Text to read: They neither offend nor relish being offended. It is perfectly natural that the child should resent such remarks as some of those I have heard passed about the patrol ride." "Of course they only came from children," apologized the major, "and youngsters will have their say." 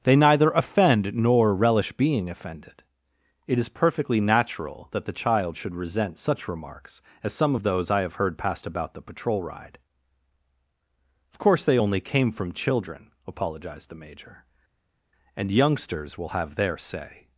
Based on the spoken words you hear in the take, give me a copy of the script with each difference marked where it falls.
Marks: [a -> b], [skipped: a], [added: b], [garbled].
They neither offend nor relish being offended. It is perfectly natural that the child should resent such remarks as some of those I have heard passed about the patrol ride." "Of course they only came from children," apologized the major, "and youngsters will have their say."